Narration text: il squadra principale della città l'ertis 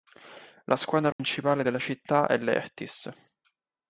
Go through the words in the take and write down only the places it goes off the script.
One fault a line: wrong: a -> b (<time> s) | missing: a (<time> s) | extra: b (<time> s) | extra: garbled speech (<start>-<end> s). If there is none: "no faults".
wrong: il -> la (0.7 s)
extra: è (2.3 s)